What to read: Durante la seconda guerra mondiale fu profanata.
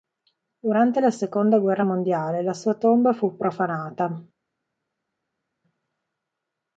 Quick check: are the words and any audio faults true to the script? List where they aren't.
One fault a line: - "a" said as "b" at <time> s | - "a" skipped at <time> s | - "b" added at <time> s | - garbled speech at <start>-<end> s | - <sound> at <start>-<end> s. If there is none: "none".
- "la sua tomba" added at 2.4 s